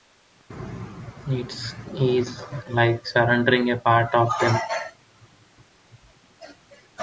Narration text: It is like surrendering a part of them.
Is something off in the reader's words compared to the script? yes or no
no